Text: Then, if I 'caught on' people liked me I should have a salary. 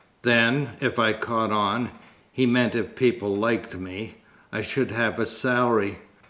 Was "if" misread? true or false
false